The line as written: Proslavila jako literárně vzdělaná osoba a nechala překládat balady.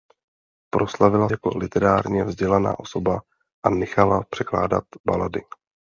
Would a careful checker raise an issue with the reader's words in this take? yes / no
no